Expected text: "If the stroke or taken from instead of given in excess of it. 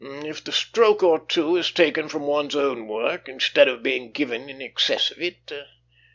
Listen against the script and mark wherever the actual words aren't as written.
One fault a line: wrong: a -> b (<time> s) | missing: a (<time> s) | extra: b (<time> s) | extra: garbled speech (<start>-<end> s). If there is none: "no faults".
extra: two is (1.2 s)
extra: one's own work (2.2 s)
extra: being (3.8 s)